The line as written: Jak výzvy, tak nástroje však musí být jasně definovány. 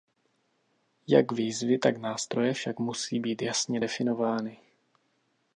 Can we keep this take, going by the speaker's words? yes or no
yes